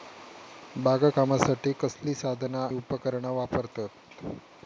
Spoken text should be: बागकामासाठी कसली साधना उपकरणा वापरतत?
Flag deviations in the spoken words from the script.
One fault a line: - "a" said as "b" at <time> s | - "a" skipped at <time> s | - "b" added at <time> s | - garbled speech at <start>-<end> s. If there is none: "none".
none